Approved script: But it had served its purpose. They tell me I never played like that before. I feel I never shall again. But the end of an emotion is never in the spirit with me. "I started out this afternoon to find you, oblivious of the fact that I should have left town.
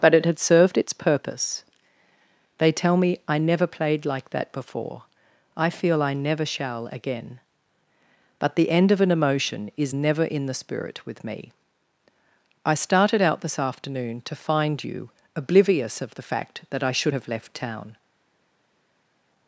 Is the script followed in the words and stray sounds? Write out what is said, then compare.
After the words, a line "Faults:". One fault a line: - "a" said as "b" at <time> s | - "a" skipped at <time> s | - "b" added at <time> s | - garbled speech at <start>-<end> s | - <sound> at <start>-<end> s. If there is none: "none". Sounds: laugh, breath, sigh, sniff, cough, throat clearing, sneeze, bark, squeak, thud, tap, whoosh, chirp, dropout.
But it had served its purpose. They tell me I never played like that before. I feel I never shall again. But the end of an emotion is never in the spirit with me. "I started out this afternoon to find you, oblivious of the fact that I should have left town.
Faults:
none